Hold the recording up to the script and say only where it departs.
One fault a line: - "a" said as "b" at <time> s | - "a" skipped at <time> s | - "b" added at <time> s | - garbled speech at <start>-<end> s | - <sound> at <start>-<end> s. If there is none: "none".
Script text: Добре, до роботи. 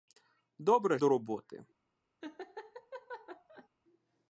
- laugh at 2.2-3.7 s